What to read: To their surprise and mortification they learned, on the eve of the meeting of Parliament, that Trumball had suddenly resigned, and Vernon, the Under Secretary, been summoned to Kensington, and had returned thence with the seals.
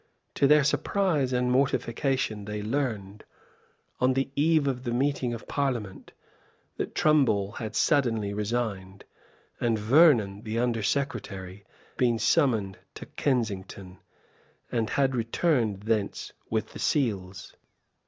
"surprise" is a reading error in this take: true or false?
false